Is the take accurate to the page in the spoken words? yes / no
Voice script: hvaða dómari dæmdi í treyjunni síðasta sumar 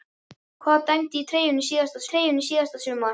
no